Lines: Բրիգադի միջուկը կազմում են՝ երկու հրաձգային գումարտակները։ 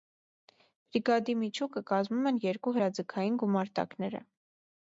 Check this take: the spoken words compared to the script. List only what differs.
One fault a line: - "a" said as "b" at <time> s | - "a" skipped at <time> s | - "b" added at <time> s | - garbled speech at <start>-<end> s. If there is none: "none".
none